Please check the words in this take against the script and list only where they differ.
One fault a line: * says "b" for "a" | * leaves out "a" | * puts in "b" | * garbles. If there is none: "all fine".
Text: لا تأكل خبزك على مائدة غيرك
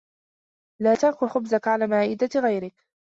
all fine